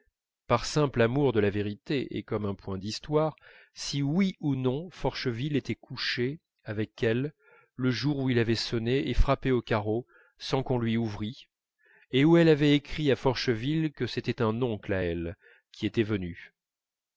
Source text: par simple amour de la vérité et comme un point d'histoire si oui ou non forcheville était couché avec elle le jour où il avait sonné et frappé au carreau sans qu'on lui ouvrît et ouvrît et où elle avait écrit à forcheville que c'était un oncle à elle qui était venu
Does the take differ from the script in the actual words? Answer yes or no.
yes